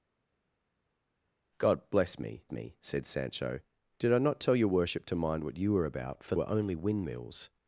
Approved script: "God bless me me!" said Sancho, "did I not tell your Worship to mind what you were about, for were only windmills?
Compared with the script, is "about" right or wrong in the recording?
right